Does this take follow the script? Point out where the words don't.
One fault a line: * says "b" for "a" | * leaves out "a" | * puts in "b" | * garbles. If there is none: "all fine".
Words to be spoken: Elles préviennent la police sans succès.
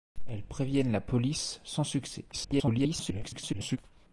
* garbles